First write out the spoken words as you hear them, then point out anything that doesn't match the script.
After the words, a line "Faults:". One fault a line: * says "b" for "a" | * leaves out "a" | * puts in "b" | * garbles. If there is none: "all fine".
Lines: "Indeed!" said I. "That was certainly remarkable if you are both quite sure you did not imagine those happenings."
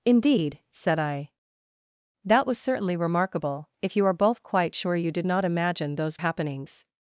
"Indeed!" said I. "That was certainly remarkable if you are both quite sure you did not imagine those happenings."
Faults:
all fine